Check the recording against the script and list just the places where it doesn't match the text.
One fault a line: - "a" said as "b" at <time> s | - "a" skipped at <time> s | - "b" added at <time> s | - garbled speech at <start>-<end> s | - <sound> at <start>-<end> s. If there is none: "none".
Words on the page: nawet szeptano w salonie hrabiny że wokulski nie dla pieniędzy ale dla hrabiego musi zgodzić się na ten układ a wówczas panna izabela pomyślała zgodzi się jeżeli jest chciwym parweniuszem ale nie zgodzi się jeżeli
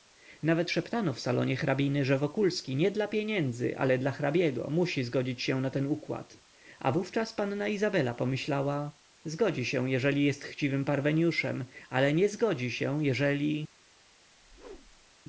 - whoosh at 14.3-15.1 s